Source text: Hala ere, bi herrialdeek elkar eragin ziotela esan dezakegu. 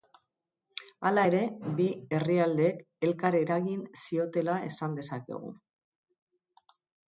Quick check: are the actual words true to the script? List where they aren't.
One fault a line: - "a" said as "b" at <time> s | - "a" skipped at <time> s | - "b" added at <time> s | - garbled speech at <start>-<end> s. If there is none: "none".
none